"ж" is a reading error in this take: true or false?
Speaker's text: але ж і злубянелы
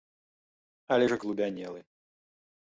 false